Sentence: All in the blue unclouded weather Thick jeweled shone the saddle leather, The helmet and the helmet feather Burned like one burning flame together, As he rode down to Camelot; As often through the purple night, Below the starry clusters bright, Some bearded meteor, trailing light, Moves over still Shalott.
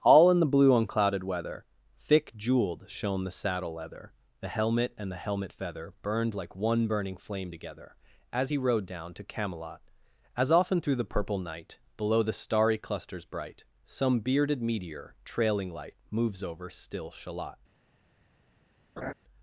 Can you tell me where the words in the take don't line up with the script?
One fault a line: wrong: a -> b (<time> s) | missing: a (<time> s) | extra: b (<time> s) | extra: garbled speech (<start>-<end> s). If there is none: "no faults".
no faults